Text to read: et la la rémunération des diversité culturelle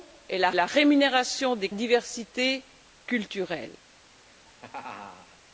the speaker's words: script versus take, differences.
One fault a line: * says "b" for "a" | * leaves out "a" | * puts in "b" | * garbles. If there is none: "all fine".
all fine